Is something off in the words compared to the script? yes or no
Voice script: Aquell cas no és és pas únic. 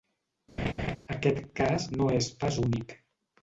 yes